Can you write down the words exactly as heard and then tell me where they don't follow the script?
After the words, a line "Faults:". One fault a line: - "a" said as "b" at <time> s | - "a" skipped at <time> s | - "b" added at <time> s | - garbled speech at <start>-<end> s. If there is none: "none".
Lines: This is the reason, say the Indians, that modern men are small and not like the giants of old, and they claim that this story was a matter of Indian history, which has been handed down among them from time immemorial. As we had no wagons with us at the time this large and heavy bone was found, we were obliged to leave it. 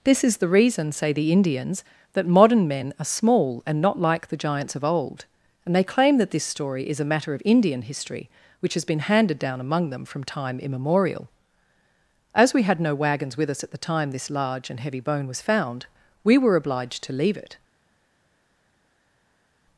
This is the reason, say the Indians, that modern men are small and not like the giants of old, and they claim that this story is a matter of Indian history, which has been handed down among them from time immemorial. As we had no wagons with us at the time this large and heavy bone was found, we were obliged to leave it.
Faults:
- "was" said as "is" at 6.9 s